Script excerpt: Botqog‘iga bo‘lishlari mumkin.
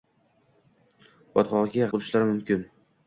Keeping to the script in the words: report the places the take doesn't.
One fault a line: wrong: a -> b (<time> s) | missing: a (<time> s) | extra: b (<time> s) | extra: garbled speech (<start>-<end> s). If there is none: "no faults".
no faults